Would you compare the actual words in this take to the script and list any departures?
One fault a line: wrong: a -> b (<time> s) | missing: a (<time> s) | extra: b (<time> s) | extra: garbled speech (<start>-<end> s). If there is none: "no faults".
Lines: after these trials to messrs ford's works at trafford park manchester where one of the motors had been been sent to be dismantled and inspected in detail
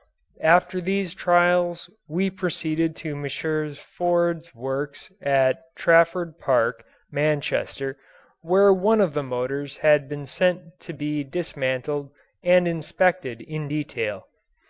extra: we proceeded (2.1 s)
missing: been (10.2 s)